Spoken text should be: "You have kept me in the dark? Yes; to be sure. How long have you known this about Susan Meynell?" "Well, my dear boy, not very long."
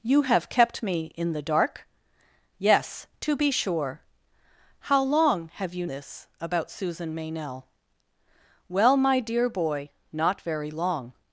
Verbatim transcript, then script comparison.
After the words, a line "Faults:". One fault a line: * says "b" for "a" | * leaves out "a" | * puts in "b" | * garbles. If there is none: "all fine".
"You have kept me in the dark? Yes; to be sure. How long have you this about Susan Meynell?" "Well, my dear boy, not very long."
Faults:
* leaves out "known"